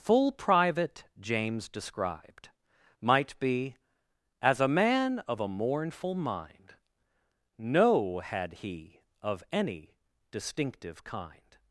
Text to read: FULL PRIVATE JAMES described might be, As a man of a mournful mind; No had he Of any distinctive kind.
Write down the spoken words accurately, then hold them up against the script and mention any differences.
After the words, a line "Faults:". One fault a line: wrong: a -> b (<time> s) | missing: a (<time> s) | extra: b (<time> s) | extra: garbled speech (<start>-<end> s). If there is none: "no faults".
FULL PRIVATE JAMES described might be, As a man of a mournful mind; No had he Of any distinctive kind.
Faults:
no faults